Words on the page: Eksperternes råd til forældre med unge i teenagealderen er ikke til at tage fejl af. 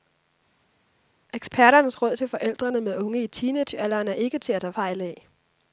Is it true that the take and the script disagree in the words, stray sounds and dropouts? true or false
false